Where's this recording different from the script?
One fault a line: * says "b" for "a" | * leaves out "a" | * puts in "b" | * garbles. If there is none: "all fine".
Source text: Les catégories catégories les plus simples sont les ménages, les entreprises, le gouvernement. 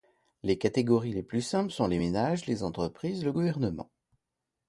* leaves out "catégories"